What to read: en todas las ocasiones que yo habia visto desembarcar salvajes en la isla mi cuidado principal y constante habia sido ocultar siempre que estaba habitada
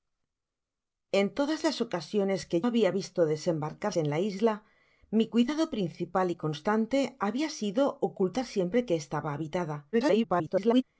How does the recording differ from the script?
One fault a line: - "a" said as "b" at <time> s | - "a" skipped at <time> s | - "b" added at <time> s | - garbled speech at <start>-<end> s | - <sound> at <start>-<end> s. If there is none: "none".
- "yo" skipped at 2.6 s
- "salvajes" skipped at 3.9 s
- garbled speech at 9.9-10.8 s